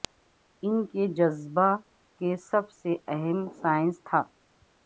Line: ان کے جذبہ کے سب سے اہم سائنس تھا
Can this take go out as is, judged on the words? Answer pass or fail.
pass